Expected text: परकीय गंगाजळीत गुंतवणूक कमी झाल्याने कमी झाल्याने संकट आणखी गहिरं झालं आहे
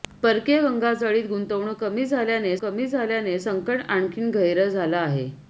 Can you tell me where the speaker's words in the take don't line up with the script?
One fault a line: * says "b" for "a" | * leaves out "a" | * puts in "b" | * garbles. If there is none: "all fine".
all fine